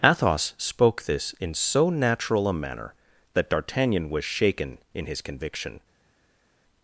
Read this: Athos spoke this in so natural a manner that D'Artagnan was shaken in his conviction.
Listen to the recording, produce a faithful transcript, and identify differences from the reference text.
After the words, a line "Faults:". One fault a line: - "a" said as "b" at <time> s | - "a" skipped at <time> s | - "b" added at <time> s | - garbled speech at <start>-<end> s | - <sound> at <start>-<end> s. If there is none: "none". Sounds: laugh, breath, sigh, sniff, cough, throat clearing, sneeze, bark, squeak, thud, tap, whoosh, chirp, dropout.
Athos spoke this in so natural a manner that D'Artagnan was shaken in his conviction.
Faults:
none